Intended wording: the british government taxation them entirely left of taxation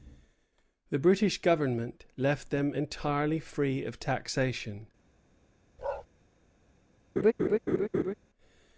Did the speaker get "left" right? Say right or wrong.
wrong